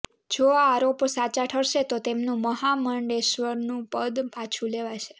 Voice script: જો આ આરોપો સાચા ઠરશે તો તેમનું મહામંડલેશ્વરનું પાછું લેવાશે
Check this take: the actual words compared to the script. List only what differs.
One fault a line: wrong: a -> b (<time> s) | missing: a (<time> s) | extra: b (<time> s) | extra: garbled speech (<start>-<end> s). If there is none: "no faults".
extra: પદ (3.9 s)